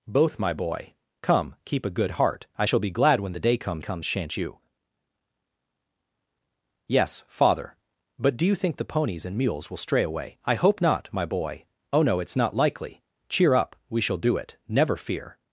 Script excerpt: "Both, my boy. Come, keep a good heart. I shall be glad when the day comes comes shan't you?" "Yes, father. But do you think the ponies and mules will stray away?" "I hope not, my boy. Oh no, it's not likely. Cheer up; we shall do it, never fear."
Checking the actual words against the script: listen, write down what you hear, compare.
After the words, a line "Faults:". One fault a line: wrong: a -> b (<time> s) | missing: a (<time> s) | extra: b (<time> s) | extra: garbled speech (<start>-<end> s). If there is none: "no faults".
"Both, my boy. Come, keep a good heart. I shall be glad when the day comes comes shan't you?" "Yes, father. But do you think the ponies and mules will stray away?" "I hope not, my boy. Oh no, it's not likely. Cheer up; we shall do it, never fear."
Faults:
no faults